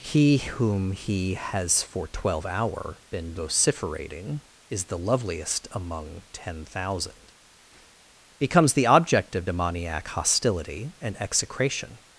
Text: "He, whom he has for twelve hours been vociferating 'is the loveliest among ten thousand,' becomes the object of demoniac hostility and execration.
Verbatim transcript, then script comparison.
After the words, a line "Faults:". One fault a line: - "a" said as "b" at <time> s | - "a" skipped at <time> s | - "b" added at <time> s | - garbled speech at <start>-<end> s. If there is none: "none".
"He, whom he has for twelve hour been vociferating 'is the loveliest among ten thousand,' becomes the object of demoniac hostility and execration.
Faults:
- "hours" said as "hour" at 2.5 s